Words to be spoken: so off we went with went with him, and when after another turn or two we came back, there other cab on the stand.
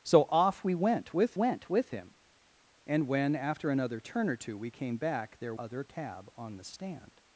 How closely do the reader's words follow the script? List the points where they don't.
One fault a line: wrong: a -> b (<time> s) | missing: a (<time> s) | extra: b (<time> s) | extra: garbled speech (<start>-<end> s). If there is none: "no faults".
no faults